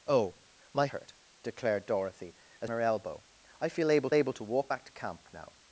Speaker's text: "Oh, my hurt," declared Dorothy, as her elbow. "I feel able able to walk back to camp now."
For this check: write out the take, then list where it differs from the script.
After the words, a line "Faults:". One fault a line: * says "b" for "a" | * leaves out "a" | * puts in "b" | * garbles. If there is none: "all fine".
"Oh, my hurt," declared Dorothy, as her elbow. "I feel able able to walk back to camp now."
Faults:
all fine